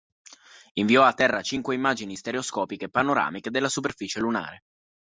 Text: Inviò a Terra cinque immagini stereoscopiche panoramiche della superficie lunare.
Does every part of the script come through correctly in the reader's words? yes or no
yes